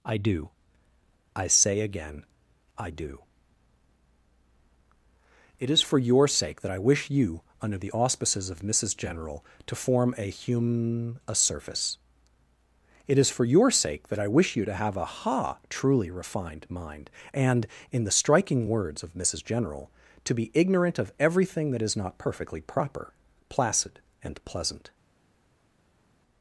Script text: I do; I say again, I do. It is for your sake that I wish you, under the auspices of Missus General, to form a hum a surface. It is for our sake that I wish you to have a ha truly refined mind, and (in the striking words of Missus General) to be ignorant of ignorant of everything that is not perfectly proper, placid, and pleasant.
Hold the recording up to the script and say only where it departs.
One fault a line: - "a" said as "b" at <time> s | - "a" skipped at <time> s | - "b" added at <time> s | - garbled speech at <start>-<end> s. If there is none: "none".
- "our" said as "your" at 13.4 s
- "ignorant of" skipped at 21.1 s